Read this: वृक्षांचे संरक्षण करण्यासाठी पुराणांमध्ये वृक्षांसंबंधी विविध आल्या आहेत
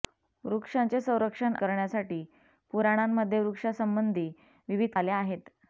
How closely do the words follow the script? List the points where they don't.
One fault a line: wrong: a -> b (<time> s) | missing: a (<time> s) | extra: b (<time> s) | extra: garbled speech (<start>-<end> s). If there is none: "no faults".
no faults